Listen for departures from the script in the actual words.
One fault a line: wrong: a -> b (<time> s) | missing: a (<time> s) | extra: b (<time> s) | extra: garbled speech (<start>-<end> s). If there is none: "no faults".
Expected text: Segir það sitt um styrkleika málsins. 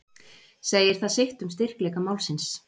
no faults